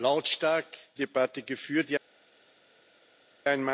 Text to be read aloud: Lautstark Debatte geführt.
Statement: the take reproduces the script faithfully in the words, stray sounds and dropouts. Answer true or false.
true